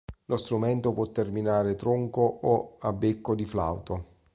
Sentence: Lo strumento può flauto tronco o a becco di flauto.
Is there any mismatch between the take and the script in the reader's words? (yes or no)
yes